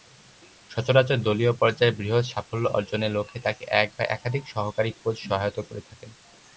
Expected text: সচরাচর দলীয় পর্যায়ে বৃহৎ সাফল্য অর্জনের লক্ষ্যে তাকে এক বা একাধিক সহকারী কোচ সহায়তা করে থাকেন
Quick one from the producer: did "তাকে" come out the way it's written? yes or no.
yes